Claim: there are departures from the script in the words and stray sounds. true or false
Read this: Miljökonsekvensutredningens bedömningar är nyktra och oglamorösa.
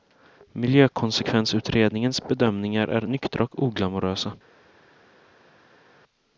false